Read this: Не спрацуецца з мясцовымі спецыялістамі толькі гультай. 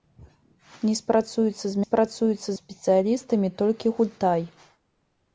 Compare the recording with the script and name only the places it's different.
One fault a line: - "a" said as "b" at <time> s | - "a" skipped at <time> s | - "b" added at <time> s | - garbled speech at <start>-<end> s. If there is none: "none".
- "мясцовымі" said as "спрацуецца" at 1.8 s